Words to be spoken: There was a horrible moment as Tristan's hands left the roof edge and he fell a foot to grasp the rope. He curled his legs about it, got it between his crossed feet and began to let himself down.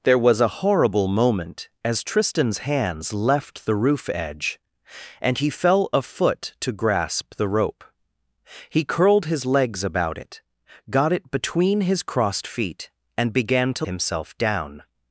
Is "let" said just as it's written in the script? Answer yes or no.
no